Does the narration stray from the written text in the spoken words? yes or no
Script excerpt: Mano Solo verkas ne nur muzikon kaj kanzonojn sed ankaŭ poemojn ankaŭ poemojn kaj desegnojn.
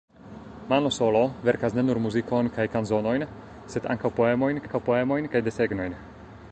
no